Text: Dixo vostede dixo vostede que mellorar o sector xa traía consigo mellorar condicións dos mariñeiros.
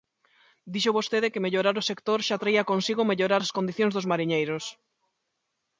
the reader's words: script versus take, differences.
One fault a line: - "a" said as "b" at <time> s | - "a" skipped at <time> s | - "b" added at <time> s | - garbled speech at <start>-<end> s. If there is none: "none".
- "dixo vostede" skipped at 1.3 s
- "as" added at 3.4 s